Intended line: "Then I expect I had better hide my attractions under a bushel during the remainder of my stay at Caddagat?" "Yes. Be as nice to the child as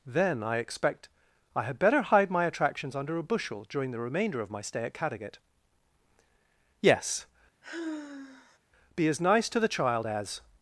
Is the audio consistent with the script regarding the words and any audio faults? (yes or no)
no